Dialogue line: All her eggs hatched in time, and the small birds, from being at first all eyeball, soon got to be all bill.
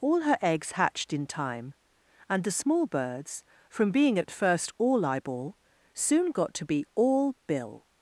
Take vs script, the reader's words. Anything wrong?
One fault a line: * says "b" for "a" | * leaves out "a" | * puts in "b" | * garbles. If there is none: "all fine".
all fine